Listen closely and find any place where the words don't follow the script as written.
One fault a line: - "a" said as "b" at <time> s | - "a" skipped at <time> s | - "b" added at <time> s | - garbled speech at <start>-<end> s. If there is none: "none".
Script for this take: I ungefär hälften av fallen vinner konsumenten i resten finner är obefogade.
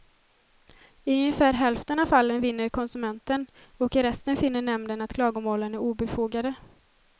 - "och" added at 3.8 s
- "nämnden att klagomålen" added at 4.6 s